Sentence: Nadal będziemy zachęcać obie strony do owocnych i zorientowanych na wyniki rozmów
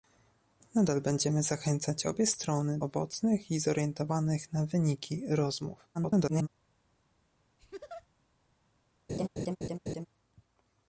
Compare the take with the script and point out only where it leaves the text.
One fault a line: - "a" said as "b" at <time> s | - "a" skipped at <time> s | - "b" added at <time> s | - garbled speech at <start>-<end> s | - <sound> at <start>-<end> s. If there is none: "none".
- "do" skipped at 2.8 s
- garbled speech at 5.9-6.5 s
- laugh at 7.6-8.1 s
- laugh at 9.1-10.1 s